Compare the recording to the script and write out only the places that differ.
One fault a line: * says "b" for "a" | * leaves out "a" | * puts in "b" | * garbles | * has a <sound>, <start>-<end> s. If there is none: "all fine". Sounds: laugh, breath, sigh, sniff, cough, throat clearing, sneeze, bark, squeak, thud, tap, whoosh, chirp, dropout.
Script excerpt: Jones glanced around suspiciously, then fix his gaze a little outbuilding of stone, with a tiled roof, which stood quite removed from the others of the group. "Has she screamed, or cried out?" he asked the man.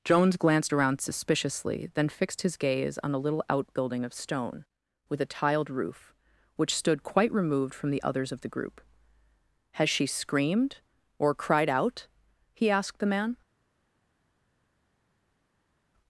* says "fixed" for "fix"
* puts in "on"